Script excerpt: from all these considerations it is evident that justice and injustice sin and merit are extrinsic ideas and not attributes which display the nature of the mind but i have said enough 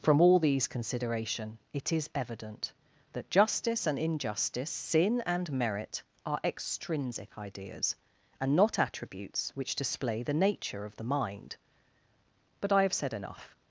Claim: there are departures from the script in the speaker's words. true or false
true